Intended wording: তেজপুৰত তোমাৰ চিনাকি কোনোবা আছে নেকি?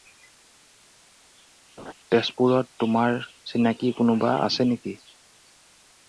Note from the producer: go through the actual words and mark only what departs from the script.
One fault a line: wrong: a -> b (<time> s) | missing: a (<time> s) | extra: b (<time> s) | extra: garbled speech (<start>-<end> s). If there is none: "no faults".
no faults